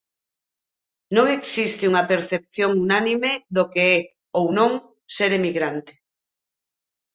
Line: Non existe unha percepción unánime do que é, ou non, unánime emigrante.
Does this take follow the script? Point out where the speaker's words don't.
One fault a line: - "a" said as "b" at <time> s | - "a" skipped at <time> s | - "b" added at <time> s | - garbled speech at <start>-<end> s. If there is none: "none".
- "unánime" said as "ser" at 5.1 s